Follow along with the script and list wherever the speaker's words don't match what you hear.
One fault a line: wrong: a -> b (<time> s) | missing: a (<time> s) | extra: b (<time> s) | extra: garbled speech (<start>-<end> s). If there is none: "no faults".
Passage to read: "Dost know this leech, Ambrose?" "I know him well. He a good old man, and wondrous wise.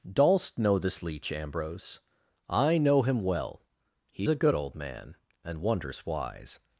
no faults